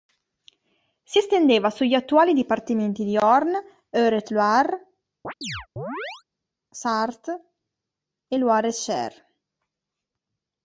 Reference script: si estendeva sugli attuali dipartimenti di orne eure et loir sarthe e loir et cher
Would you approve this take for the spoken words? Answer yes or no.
yes